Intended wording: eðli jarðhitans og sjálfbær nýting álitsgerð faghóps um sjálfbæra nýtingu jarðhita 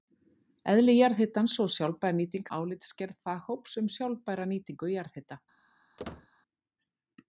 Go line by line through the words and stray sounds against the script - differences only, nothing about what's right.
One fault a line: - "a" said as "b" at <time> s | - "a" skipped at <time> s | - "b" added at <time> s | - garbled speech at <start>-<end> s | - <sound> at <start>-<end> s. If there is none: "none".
- squeak at 6.0-6.3 s